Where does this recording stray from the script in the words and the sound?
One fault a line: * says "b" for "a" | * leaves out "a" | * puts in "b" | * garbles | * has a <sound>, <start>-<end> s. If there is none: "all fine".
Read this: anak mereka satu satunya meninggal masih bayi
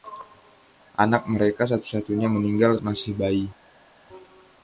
all fine